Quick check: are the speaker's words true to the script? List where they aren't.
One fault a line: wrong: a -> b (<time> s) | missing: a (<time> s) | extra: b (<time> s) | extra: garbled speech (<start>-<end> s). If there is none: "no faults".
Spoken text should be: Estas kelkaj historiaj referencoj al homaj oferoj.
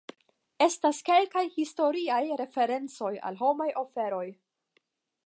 no faults